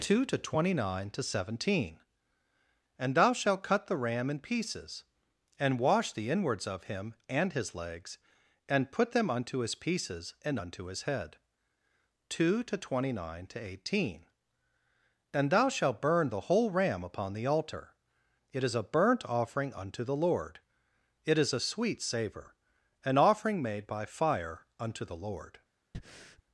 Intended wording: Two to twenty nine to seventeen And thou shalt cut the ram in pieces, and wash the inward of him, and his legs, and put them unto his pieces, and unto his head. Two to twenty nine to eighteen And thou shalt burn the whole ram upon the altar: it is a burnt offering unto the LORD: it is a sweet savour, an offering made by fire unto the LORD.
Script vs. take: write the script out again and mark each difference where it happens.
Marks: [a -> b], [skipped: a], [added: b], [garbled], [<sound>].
Two to twenty nine to seventeen And thou shalt cut the ram in pieces, and wash the [inward -> inwards] of him, and his legs, and put them unto his pieces, and unto his head. Two to twenty nine to eighteen And thou shalt burn the whole ram upon the altar: it is a burnt offering unto the LORD: it is a sweet savour, an offering made by fire unto the LORD. [breath]